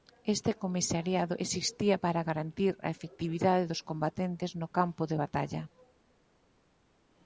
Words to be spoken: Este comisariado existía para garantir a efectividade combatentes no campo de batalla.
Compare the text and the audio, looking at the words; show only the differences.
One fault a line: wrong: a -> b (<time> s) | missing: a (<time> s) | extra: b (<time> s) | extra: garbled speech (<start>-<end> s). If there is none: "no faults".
extra: dos (3.7 s)